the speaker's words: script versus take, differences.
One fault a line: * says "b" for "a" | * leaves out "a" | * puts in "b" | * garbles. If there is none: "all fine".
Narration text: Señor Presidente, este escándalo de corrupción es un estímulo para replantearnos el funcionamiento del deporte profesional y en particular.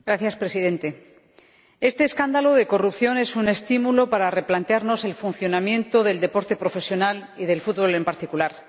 * puts in "del fútbol"